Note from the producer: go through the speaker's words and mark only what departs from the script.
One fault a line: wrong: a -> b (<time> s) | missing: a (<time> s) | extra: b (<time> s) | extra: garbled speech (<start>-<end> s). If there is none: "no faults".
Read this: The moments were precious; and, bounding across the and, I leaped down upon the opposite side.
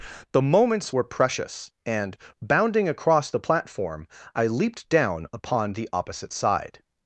wrong: and -> platform (3.4 s)